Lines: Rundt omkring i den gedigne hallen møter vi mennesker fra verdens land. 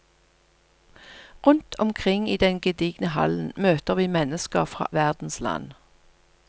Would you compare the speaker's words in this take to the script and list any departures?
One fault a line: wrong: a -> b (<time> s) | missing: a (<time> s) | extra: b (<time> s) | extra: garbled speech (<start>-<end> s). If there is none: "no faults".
no faults